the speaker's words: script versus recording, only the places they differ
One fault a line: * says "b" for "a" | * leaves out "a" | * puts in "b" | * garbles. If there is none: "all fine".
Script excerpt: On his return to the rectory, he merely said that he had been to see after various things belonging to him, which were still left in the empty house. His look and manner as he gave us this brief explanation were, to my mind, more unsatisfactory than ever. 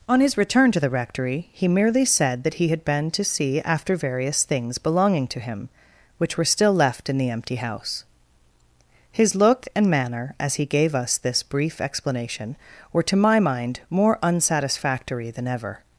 all fine